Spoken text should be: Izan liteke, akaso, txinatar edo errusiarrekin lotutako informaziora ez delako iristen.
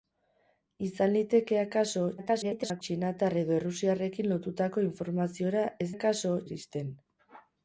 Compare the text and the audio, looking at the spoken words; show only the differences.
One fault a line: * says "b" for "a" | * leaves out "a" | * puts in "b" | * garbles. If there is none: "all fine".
* garbles
* says "akaso" for "delako"